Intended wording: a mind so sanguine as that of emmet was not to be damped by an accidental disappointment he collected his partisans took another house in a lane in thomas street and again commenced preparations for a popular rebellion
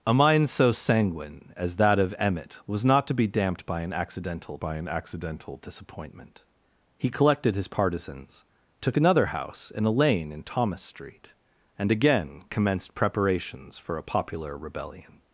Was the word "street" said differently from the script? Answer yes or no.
no